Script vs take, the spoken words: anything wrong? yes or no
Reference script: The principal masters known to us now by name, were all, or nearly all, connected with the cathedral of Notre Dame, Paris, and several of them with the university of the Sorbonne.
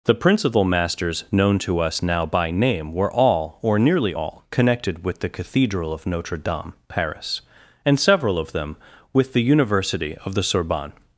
no